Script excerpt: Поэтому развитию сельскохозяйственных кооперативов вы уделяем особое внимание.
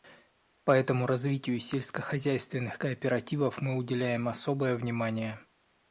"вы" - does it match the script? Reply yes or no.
no